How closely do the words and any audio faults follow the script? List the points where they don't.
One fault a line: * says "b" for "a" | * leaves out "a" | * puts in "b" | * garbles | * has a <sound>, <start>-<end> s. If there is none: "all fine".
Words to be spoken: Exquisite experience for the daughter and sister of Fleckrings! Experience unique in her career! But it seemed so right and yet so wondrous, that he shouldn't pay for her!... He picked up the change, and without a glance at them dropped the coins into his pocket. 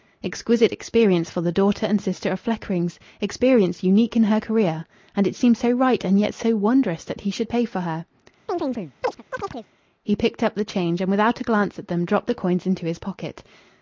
* says "And" for "But"
* says "should" for "shouldn't"
* has a chirp, 8.5-9.7 s